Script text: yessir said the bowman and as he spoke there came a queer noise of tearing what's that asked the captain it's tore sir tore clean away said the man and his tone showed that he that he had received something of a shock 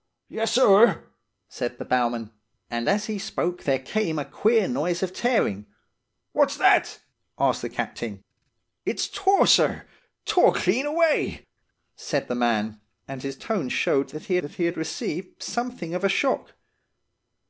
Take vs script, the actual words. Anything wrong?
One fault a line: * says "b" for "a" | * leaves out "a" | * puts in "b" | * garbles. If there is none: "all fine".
all fine